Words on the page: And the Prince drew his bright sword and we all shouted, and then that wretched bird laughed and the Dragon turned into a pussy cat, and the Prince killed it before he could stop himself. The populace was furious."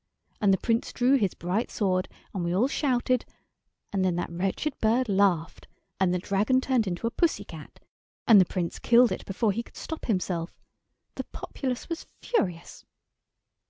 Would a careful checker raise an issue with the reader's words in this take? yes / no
no